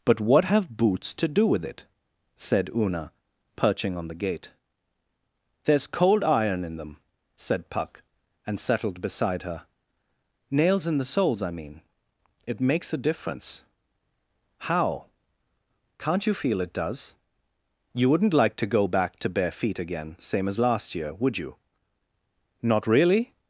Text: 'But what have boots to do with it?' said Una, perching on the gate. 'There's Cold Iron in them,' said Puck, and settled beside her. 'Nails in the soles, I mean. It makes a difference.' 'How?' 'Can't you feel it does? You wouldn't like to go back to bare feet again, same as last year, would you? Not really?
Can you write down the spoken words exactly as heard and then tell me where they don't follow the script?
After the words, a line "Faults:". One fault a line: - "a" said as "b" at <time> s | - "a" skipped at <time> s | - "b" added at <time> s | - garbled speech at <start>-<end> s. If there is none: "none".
'But what have boots to do with it?' said Una, perching on the gate. 'There's Cold Iron in them,' said Puck, and settled beside her. 'Nails in the soles, I mean. It makes a difference.' 'How?' 'Can't you feel it does? You wouldn't like to go back to bare feet again, same as last year, would you? Not really?
Faults:
none